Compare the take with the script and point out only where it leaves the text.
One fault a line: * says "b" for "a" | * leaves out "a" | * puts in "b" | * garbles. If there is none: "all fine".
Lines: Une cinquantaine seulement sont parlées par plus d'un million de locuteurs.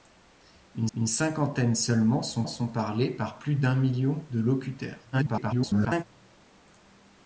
* puts in "une"
* puts in "sont"
* garbles